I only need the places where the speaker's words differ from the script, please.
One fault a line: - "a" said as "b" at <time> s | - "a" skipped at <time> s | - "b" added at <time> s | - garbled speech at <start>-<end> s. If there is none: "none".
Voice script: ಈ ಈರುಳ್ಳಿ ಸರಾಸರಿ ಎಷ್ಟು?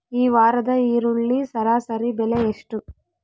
- "ವಾರದ" added at 0.3 s
- "ಬೆಲೆ" added at 2.1 s